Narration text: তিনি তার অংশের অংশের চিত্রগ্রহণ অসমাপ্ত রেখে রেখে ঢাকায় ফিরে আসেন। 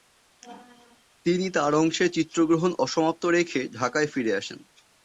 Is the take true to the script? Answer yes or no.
no